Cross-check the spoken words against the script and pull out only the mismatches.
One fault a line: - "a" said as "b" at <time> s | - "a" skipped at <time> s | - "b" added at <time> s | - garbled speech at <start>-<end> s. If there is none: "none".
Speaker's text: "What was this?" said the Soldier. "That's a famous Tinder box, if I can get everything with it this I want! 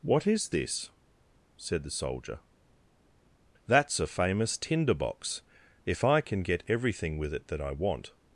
- "was" said as "is" at 0.2 s
- "this" said as "that" at 7.5 s